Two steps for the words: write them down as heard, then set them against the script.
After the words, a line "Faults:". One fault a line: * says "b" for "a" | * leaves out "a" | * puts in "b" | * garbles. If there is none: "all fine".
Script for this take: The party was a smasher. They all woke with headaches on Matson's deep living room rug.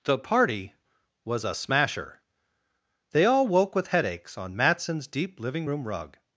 The party was a smasher. They all woke with headaches on Matson's deep living room rug.
Faults:
all fine